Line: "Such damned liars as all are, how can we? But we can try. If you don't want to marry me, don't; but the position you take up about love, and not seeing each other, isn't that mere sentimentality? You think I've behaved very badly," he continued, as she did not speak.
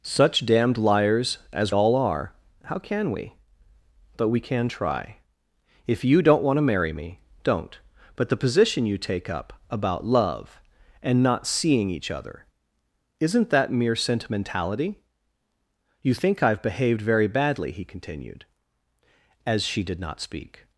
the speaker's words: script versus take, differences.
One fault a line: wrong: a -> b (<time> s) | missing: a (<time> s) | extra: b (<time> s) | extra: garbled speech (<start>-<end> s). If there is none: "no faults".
no faults